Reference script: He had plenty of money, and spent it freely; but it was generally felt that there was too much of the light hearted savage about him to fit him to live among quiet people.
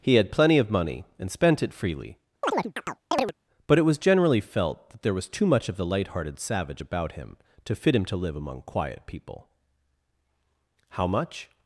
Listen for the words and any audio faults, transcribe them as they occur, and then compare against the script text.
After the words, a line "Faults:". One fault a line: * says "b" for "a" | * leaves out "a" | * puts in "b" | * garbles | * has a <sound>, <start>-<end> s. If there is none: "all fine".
He had plenty of money, and spent it freely; but it was generally felt that there was too much of the light hearted savage about him to fit him to live among quiet people. How much
Faults:
* has a chirp, 2.4-3.3 s
* puts in "How much"